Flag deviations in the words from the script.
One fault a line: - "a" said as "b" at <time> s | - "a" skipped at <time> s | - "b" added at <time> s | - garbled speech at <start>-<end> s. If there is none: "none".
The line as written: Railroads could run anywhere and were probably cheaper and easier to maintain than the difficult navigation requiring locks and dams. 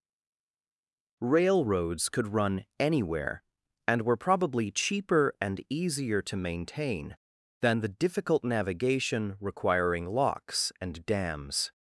none